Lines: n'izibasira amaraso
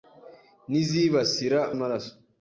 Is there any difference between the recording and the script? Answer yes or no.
no